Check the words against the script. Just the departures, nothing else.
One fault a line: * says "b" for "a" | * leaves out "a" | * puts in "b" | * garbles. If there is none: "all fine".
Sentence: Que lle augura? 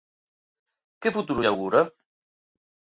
* puts in "futuro"